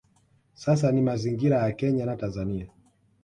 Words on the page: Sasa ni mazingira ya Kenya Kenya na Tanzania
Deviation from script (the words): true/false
true